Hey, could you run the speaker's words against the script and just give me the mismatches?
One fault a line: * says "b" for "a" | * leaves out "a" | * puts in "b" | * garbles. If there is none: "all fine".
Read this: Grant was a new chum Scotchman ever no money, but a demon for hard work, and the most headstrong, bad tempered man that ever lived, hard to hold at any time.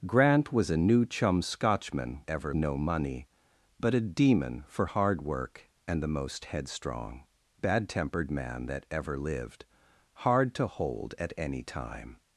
all fine